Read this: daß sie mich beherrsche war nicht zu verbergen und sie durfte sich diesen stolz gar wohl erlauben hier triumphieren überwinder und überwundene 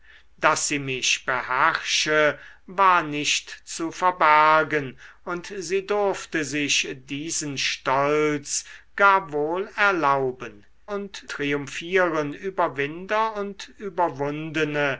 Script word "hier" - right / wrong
wrong